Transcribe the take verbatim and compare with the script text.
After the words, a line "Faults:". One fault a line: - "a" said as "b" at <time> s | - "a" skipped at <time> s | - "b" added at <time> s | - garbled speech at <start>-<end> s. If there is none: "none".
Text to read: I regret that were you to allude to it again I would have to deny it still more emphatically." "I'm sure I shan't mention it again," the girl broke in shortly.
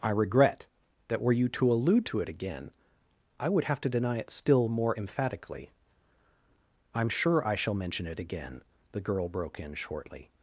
I regret that were you to allude to it again I would have to deny it still more emphatically." "I'm sure I shall mention it again," the girl broke in shortly.
Faults:
- "shan't" said as "shall" at 7.5 s